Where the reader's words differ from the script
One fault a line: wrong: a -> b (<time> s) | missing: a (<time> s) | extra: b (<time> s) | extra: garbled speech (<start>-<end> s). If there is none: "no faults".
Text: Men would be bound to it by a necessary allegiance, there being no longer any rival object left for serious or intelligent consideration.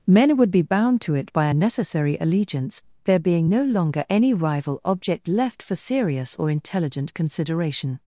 no faults